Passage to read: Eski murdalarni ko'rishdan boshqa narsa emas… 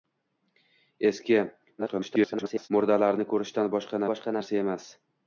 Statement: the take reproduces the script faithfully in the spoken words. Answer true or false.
false